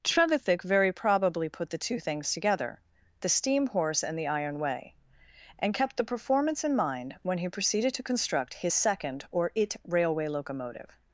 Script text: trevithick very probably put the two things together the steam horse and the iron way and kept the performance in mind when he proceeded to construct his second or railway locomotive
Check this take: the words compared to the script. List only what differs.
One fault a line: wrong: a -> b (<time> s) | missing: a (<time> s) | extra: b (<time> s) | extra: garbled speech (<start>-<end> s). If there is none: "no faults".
extra: it (9.6 s)